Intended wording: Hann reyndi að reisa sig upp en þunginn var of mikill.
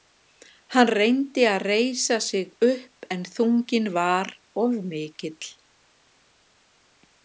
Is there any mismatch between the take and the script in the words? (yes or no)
no